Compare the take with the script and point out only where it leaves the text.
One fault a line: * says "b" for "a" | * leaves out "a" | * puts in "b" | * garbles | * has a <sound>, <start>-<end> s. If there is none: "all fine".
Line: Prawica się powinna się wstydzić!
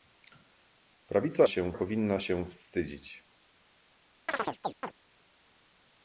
* has a chirp, 4.3-4.9 s